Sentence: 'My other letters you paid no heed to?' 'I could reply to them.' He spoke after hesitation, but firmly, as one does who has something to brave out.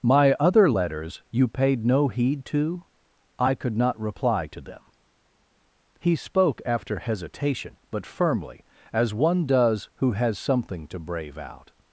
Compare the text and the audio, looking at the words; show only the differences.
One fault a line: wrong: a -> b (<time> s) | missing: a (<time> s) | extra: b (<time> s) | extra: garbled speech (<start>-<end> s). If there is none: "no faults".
extra: not (3.8 s)